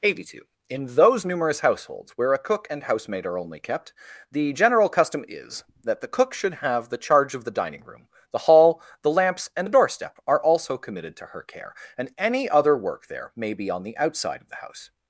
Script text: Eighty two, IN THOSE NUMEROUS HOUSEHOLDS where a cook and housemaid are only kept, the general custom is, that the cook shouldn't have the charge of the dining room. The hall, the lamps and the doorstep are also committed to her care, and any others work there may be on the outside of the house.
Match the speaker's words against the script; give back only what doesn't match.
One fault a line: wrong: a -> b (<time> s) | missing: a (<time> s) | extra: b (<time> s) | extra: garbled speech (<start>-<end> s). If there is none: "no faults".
wrong: shouldn't -> should (6.3 s)
wrong: others -> other (12.5 s)